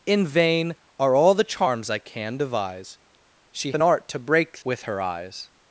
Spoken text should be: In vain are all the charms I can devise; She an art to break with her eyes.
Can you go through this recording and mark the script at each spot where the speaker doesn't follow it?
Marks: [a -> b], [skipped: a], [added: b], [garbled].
In vain are all the charms I can devise; She an art to break with her eyes.